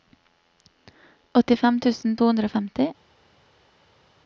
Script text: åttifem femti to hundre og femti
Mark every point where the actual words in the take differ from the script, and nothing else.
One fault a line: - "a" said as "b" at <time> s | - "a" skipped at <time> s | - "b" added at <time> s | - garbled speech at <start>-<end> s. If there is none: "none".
- "femti" said as "tusen" at 1.9 s